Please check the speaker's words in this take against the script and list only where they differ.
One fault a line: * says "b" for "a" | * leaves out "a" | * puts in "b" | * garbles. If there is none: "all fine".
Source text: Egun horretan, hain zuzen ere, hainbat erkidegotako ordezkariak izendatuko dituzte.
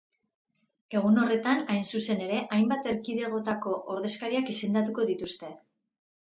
all fine